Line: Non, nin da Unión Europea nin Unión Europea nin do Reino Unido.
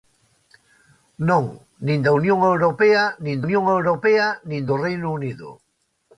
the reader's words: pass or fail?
pass